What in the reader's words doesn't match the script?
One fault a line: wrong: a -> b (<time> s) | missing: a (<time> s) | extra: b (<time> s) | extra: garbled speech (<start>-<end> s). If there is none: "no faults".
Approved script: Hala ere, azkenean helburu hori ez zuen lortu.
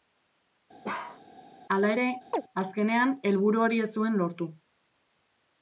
no faults